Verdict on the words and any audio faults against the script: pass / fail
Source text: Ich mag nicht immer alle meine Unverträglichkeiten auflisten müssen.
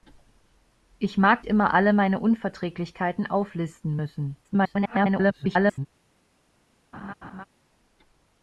fail